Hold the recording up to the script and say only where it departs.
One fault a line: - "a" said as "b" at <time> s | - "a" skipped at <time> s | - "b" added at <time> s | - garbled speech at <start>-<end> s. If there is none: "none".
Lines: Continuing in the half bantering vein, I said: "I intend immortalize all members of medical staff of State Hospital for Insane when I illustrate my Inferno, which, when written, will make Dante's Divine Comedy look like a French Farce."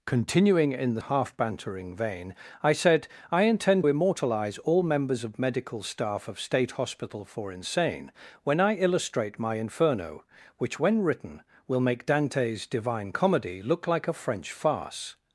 none